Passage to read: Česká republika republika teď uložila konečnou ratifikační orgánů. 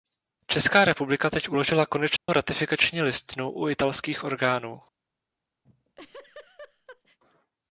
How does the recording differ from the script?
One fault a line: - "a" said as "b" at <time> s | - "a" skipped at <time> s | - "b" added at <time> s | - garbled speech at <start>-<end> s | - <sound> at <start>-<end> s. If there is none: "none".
- "republika" skipped at 1.3 s
- dropout at 2.2-2.3 s
- "listinu u italských" added at 3.0 s
- laugh at 5.6-7.2 s